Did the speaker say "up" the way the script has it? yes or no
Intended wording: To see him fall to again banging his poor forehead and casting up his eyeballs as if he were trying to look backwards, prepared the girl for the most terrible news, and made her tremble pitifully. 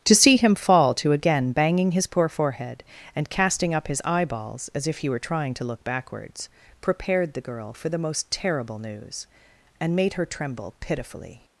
yes